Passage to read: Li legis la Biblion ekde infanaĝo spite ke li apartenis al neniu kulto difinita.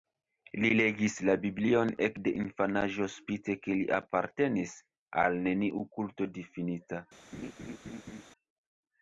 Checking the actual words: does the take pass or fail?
pass